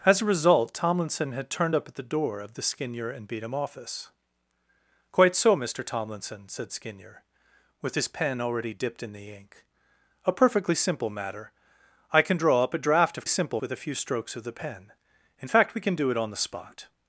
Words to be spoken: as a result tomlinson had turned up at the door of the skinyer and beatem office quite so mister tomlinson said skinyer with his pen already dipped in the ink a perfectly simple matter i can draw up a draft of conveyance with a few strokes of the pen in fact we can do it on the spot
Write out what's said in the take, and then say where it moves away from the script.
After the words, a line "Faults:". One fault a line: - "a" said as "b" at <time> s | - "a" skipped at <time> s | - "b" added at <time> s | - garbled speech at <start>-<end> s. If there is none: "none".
as a result tomlinson had turned up at the door of the skinyer and beatem office quite so mister tomlinson said skinyer with his pen already dipped in the ink a perfectly simple matter i can draw up a draft of simple with a few strokes of the pen in fact we can do it on the spot
Faults:
- "conveyance" said as "simple" at 13.3 s